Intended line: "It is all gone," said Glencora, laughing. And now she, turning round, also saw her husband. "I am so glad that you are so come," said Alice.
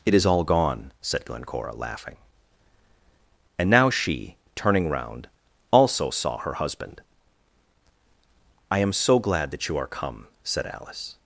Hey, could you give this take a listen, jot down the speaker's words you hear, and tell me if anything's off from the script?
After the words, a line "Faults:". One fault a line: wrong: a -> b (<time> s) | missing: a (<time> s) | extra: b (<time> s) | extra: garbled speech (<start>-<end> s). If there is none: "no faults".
"It is all gone," said Glencora, laughing. And now she, turning round, also saw her husband. "I am so glad that you are come," said Alice.
Faults:
missing: so (9.9 s)